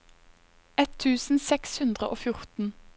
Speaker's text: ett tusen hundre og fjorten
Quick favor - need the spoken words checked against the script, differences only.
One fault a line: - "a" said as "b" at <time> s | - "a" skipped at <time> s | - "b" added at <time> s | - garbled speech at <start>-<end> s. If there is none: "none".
- "seks" added at 1.5 s